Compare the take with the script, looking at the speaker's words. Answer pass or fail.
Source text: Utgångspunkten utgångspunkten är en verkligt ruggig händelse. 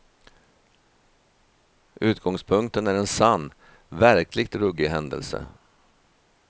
fail